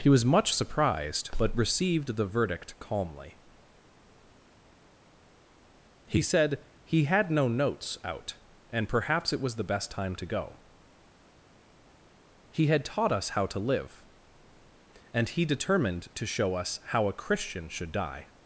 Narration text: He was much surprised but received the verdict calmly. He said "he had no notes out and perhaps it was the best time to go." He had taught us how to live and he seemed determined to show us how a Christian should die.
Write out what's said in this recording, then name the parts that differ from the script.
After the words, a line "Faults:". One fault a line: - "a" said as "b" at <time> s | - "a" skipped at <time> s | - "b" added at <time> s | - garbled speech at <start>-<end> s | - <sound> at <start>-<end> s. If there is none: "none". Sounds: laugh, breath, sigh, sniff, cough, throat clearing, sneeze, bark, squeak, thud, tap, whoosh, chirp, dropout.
He was much surprised but received the verdict calmly. He said "he had no notes out and perhaps it was the best time to go." He had taught us how to live and he determined to show us how a Christian should die.
Faults:
- "seemed" skipped at 15.4 s